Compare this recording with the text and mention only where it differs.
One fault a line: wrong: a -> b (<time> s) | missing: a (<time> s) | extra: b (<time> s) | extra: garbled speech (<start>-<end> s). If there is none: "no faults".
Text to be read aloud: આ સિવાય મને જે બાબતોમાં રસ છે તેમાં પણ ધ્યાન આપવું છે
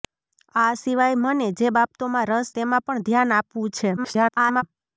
missing: છે (2.5 s)
extra: garbled speech (4.0-4.6 s)